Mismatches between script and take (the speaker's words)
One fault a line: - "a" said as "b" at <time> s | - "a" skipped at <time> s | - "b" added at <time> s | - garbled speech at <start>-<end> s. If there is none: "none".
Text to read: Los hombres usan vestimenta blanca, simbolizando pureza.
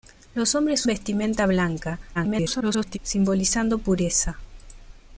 - "usan" skipped at 0.9 s
- garbled speech at 2.1-3.0 s